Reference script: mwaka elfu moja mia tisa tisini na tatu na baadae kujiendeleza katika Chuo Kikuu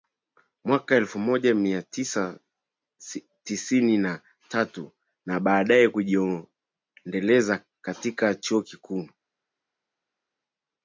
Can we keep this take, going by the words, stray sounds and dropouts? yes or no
yes